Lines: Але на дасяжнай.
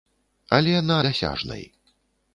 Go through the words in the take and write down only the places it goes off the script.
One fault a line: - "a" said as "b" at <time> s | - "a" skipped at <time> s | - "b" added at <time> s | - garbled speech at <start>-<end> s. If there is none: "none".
none